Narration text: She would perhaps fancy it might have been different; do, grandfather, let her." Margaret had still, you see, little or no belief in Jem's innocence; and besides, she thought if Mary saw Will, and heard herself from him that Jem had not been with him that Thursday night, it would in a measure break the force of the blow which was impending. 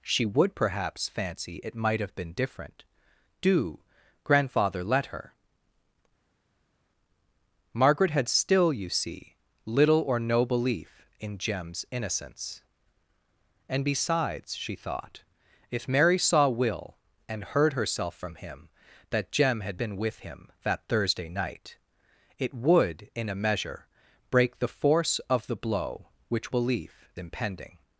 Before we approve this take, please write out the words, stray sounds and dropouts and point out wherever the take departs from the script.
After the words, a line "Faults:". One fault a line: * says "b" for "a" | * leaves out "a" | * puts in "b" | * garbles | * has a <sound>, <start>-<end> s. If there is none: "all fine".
She would perhaps fancy it might have been different; do, grandfather, let her." Margaret had still, you see, little or no belief in Jem's innocence; and besides, she thought if Mary saw Will, and heard herself from him that Jem had been with him that Thursday night, it would in a measure break the force of the blow which belief impending.
Faults:
* leaves out "not"
* says "belief" for "was"